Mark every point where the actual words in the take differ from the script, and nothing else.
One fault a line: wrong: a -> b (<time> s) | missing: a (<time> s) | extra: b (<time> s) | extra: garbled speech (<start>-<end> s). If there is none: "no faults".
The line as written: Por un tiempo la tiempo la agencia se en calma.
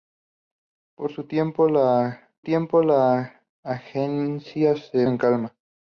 no faults